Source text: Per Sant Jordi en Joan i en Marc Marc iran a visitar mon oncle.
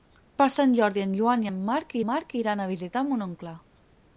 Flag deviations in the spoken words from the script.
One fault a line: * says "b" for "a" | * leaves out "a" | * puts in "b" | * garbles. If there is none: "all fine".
all fine